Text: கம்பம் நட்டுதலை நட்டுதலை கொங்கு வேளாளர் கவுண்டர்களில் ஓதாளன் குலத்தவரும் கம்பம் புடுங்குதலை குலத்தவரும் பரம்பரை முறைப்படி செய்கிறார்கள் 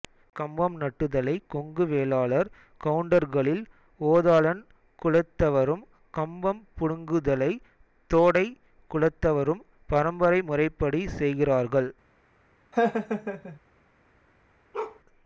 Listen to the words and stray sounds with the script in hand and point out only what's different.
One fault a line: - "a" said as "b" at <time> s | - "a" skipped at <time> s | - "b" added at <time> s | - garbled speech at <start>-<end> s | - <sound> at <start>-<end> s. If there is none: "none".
- "நட்டுதலை" skipped at 1.3 s
- "தோடை" added at 8.1 s
- laugh at 12.7-13.6 s
- bark at 14.7-15.0 s